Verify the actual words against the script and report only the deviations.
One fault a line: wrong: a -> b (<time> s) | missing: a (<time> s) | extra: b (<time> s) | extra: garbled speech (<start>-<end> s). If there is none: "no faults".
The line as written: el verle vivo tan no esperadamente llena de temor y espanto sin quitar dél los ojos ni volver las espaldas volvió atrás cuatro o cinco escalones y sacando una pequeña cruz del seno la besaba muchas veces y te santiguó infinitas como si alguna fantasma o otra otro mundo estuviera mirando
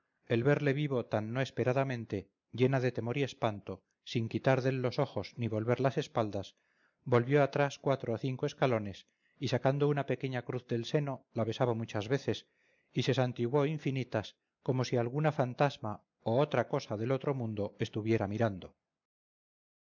wrong: te -> se (13.0 s)
extra: cosa del (16.7 s)